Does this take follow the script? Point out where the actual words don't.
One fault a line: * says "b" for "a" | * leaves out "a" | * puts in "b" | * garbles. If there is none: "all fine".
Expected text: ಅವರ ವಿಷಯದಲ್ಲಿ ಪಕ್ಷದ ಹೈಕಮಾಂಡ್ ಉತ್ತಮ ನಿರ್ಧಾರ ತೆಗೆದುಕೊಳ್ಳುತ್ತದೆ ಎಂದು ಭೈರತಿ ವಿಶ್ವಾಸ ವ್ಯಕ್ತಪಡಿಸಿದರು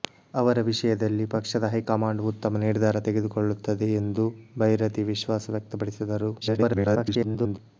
* garbles